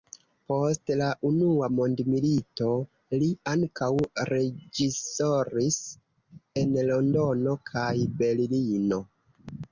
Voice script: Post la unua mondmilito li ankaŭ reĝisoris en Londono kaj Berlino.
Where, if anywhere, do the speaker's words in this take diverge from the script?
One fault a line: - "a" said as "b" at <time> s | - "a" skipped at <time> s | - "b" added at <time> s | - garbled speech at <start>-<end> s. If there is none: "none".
none